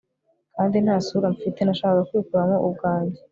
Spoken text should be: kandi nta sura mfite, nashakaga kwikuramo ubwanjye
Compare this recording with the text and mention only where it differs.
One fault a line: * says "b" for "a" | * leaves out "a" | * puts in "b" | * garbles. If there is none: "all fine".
all fine